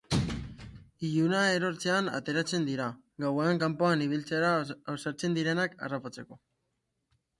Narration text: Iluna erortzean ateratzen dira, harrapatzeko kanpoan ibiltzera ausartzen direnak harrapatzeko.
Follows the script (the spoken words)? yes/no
no